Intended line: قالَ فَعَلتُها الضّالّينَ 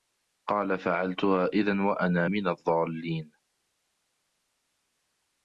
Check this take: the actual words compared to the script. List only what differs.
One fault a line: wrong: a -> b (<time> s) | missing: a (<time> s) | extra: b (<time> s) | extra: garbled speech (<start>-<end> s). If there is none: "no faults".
extra: إِذًا وَأَنا مِنَ (1.5 s)